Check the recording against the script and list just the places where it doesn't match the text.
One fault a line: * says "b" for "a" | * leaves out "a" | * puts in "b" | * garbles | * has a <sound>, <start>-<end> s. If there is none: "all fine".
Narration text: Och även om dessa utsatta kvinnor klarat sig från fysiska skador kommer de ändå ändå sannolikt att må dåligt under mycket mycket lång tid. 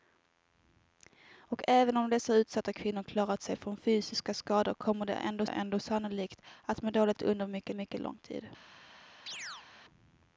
* has a chirp, 9.3-9.7 s